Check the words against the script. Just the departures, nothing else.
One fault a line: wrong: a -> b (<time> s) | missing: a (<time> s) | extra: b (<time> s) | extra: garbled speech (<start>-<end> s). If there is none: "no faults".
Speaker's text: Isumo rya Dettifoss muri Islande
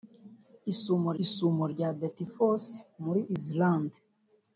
extra: isumo (1.2 s)